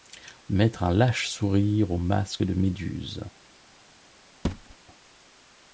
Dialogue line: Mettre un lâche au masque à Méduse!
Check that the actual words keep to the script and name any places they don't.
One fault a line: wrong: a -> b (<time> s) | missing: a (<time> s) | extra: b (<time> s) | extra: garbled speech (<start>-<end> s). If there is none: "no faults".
extra: sourire (1.3 s)
wrong: à -> de (2.4 s)